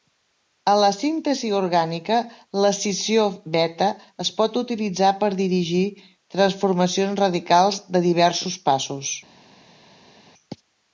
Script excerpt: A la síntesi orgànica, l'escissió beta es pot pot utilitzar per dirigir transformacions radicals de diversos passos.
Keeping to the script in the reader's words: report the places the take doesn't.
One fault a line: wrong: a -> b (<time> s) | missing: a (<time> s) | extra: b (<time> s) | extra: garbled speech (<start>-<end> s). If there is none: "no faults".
missing: pot (4.6 s)